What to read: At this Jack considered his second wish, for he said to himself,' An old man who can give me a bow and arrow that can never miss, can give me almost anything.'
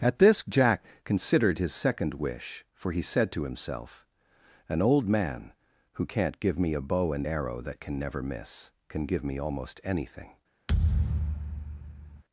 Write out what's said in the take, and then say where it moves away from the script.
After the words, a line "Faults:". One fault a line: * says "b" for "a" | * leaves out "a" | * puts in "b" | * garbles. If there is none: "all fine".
At this Jack considered his second wish, for he said to himself,' An old man who can't give me a bow and arrow that can never miss, can give me almost anything.'
Faults:
* says "can't" for "can"